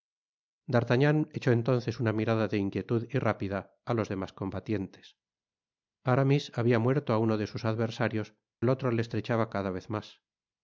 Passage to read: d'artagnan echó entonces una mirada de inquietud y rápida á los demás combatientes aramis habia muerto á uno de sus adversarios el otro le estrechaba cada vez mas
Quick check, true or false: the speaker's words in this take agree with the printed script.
true